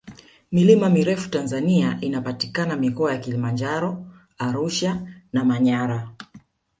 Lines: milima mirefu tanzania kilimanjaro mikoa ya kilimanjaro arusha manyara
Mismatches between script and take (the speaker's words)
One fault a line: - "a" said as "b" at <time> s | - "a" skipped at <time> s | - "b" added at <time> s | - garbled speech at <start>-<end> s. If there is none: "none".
- "kilimanjaro" said as "inapatikana" at 2.0 s
- "na" added at 5.3 s